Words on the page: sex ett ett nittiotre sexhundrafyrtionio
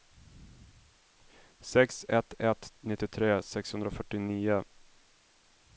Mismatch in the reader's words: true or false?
false